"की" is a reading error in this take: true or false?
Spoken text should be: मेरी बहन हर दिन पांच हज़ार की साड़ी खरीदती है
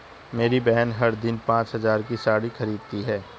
false